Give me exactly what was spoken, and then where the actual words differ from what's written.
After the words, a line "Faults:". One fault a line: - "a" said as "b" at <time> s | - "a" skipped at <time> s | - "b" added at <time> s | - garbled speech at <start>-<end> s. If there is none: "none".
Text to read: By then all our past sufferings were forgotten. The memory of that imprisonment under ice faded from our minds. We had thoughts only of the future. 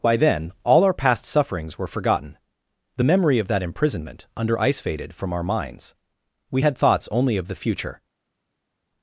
By then all our past sufferings were forgotten. The memory of that imprisonment under ice faded from our minds. We had thoughts only of the future.
Faults:
none